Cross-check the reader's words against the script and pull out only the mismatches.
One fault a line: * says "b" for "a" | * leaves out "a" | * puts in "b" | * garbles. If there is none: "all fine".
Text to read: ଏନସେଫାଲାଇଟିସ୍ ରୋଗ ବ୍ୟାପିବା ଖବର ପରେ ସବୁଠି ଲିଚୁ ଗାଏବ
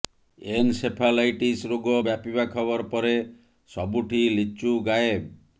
all fine